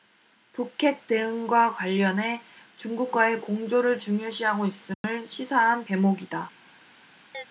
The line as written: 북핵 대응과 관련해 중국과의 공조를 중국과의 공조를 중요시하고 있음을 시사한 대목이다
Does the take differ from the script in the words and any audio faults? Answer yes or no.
yes